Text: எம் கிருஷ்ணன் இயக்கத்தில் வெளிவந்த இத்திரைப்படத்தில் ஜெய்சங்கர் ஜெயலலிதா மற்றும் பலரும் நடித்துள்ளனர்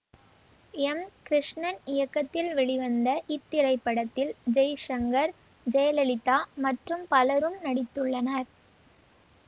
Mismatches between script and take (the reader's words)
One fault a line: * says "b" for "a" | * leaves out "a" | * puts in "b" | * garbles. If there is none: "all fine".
all fine